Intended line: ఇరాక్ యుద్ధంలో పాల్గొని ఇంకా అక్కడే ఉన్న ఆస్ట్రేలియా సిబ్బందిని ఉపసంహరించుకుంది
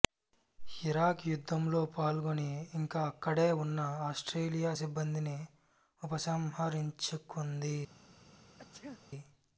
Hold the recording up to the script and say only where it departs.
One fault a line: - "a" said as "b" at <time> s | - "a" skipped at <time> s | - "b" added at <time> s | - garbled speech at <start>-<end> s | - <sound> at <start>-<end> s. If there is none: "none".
- sneeze at 8.6-9.0 s